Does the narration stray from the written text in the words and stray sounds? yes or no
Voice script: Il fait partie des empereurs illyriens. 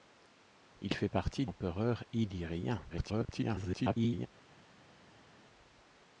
yes